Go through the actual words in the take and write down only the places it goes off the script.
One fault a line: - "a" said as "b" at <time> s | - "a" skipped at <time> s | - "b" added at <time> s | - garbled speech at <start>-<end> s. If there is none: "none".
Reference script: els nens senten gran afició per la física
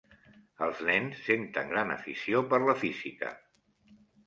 none